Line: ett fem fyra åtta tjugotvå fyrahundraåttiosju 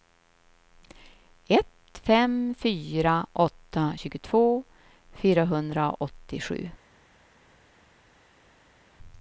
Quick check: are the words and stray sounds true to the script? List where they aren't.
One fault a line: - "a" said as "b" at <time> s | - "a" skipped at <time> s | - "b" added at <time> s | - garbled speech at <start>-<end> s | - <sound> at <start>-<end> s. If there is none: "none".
none